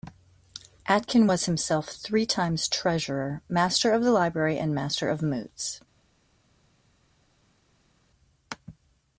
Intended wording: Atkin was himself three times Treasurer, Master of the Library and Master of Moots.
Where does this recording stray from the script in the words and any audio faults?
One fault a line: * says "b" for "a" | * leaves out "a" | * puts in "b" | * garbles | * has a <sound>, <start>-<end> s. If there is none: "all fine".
all fine